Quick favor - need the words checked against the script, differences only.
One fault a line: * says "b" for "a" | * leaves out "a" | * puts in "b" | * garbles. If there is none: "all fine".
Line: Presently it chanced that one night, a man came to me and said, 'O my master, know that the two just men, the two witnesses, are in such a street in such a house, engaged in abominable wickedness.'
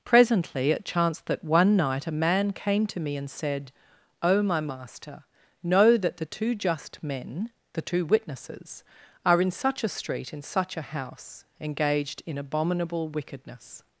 all fine